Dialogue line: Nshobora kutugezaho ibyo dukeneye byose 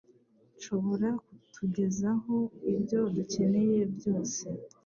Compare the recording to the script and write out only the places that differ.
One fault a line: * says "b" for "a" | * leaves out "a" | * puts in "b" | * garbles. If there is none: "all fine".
all fine